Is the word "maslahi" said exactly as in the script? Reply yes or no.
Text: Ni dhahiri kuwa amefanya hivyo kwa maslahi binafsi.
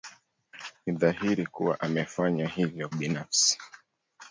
no